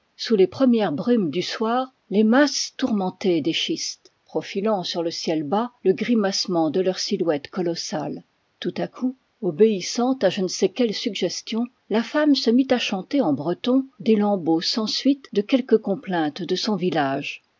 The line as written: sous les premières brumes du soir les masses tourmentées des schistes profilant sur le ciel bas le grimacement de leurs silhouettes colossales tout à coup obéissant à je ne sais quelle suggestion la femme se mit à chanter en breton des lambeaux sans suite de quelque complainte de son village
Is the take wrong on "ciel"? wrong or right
right